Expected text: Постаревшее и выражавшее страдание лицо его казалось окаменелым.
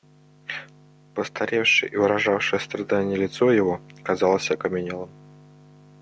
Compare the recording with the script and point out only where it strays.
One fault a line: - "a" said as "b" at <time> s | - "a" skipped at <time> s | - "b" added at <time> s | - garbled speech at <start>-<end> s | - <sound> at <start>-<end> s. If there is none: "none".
none